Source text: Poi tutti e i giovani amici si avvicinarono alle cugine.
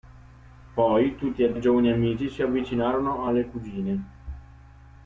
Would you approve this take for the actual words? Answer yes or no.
yes